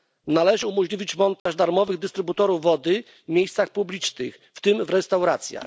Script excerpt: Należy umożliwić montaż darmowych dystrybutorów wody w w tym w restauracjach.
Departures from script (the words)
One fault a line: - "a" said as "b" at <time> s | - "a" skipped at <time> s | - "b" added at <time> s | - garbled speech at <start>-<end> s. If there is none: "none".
- "miejscach publicznych" added at 3.3 s